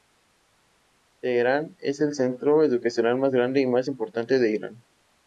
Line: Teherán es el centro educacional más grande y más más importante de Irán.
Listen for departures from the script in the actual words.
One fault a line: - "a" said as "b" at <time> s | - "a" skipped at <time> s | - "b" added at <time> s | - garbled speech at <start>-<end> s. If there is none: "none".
- "más" skipped at 3.9 s